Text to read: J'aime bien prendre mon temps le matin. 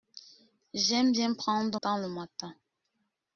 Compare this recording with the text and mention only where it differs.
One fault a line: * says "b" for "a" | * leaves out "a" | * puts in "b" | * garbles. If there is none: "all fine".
* leaves out "mon"